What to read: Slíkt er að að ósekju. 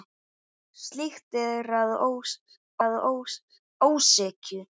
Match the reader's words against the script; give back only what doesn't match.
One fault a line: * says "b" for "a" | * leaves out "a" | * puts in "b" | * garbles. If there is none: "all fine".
all fine